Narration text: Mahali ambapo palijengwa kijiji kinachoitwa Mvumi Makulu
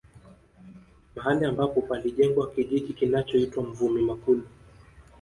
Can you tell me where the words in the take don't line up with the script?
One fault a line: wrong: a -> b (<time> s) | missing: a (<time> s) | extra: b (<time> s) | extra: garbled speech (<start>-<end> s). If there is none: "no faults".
no faults